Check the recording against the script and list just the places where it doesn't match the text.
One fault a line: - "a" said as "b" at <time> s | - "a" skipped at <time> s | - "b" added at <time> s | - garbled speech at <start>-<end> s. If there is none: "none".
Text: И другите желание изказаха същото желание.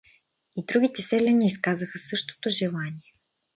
- "желание" said as "селяни" at 1.0 s